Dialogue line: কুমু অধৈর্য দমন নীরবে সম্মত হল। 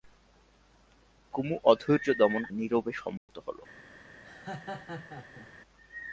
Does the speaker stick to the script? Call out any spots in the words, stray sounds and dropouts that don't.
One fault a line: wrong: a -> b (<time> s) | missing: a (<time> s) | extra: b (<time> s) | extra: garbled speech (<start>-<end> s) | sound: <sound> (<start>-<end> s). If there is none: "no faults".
sound: dropout (3.2-3.3 s)
sound: laugh (4.2-5.5 s)